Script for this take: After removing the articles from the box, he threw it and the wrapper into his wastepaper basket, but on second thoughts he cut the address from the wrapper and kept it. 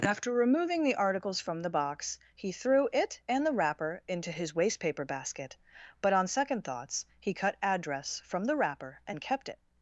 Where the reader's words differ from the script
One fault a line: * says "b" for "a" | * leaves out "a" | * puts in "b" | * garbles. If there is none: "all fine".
* leaves out "the"